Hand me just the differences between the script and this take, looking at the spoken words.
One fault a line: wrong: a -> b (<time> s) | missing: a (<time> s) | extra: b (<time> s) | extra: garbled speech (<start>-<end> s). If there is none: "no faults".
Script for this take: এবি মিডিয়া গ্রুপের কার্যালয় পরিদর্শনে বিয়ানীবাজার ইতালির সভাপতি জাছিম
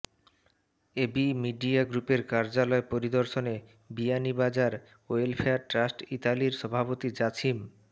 extra: ওয়েলফেয়ার ট্রাস্ট (5.1 s)